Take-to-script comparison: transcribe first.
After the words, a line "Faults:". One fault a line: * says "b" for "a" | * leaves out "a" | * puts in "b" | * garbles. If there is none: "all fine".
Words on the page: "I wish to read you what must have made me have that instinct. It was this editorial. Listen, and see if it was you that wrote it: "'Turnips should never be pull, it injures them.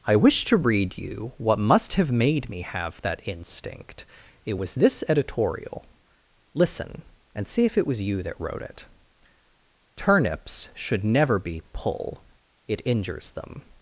"I wish to read you what must have made me have that instinct. It was this editorial. Listen, and see if it was you that wrote it: "'Turnips should never be pull, it injures them.
Faults:
all fine